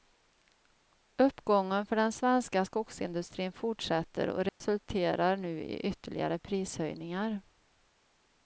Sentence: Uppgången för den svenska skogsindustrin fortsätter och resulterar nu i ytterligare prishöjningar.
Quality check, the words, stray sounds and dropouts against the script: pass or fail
fail